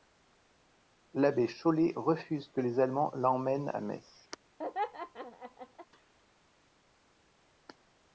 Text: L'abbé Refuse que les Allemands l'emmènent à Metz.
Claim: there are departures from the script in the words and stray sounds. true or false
true